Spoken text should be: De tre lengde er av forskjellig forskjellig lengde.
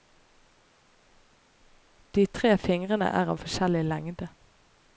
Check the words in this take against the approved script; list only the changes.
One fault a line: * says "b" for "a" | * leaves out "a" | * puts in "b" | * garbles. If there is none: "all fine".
* says "fingrene" for "lengde"
* leaves out "forskjellig"